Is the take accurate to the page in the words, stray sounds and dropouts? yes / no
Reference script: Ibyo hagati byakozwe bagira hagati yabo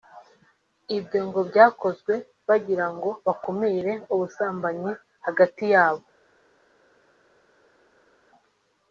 no